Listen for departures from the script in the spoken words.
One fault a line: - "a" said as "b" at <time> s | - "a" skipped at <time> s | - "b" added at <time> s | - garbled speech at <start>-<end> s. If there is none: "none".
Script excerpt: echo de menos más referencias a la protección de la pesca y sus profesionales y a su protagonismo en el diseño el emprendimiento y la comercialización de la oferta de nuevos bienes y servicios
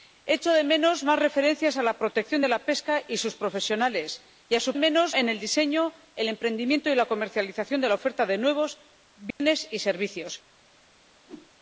- "protagonismo" said as "menos" at 4.8 s